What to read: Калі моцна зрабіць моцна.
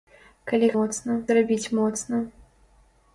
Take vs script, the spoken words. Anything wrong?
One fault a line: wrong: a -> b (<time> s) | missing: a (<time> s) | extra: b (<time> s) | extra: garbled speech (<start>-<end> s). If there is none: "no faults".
no faults